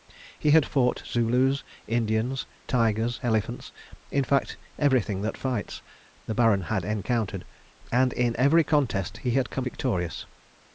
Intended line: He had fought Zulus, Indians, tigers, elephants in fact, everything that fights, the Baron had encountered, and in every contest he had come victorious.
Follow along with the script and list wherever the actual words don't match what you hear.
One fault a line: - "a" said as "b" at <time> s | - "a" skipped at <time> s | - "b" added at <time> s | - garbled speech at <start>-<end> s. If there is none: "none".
none